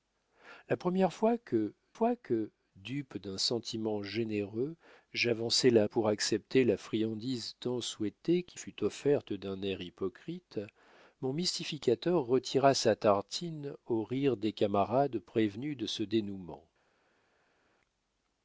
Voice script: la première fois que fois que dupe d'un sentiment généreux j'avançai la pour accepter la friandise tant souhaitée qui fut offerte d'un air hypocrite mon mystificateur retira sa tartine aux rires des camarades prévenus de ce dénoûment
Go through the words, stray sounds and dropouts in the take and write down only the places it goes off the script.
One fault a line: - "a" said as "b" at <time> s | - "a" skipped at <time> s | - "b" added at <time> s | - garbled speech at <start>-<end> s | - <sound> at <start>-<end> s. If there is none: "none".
none